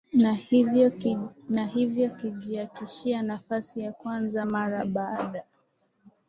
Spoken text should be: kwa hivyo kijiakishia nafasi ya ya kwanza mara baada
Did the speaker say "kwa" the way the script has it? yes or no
no